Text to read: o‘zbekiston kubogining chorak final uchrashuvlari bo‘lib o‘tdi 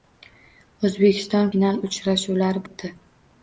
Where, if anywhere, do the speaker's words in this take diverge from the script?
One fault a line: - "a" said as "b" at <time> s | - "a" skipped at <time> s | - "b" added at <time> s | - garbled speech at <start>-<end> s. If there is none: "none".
- "kubogining chorak" skipped at 1.5 s
- "bo‘lib" skipped at 2.7 s